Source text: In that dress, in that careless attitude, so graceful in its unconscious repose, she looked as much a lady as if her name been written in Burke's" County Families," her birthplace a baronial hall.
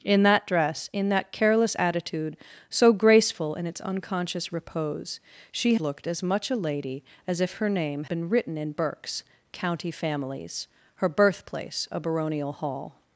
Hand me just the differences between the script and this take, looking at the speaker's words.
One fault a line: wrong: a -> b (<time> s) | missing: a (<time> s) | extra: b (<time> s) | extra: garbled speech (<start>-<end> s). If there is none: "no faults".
no faults